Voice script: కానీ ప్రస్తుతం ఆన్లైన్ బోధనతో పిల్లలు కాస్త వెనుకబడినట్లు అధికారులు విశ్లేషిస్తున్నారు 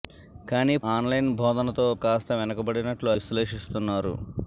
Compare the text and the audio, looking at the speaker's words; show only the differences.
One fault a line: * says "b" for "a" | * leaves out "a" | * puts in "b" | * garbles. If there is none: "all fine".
* leaves out "ప్రస్తుతం"
* leaves out "పిల్లలు"
* leaves out "అధికారులు"